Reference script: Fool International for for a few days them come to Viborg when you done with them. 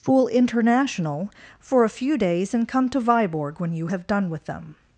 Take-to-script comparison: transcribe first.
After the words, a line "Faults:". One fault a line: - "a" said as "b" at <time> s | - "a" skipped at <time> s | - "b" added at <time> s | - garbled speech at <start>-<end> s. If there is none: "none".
Fool International for a few days and come to Viborg when you have done with them.
Faults:
- "for" skipped at 1.8 s
- "them" said as "and" at 2.5 s
- "have" added at 3.8 s